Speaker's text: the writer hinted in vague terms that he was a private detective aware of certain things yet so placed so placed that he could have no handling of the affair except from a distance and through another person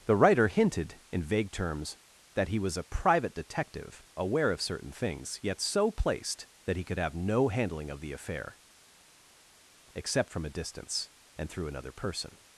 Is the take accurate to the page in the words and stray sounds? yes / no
no